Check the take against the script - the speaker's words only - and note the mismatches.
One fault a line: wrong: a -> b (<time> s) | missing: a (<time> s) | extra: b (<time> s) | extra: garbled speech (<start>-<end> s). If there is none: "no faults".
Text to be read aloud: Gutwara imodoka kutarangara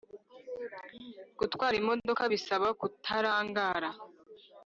extra: bisaba (2.3 s)